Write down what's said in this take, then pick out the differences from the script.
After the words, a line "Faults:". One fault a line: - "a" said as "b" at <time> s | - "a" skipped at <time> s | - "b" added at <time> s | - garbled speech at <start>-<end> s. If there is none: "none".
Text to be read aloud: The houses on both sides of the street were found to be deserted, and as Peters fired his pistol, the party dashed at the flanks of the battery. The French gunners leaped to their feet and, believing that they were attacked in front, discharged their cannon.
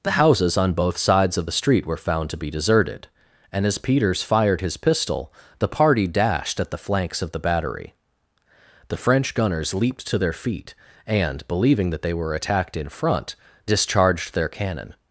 The houses on both sides of the street were found to be deserted, and as Peters fired his pistol, the party dashed at the flanks of the battery. The French gunners leaped to their feet and, believing that they were attacked in front, discharged their cannon.
Faults:
none